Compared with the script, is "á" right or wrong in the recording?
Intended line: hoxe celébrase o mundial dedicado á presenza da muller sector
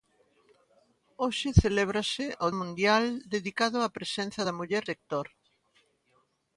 right